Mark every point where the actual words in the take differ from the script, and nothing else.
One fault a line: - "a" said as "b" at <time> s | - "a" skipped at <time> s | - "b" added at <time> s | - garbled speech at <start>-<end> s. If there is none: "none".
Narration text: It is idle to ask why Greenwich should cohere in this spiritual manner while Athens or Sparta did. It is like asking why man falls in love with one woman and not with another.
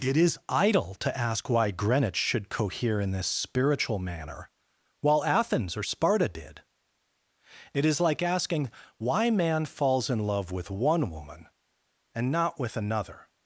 none